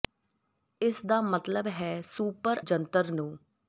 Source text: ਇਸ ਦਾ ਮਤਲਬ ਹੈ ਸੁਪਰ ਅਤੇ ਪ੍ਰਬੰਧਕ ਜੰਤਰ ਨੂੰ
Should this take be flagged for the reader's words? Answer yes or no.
yes